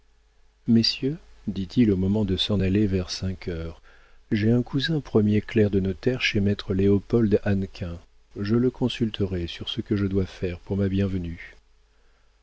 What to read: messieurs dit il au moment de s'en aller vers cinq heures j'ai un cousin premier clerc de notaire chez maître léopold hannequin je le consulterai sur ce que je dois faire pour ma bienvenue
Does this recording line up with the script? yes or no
yes